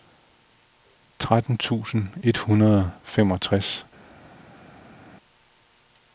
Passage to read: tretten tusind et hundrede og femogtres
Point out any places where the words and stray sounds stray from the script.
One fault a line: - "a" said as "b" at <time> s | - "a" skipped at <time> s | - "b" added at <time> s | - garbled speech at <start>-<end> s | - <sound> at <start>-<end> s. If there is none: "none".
none